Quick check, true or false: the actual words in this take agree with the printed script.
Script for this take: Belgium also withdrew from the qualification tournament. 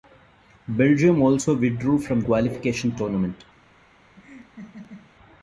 false